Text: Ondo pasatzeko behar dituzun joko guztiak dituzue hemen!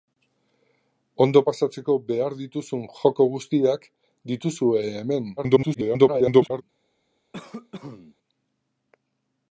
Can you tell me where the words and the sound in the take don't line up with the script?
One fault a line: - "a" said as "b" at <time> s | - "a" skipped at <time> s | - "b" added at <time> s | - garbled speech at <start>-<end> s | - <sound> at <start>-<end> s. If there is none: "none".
- garbled speech at 5.4-6.6 s
- cough at 7.3-8.1 s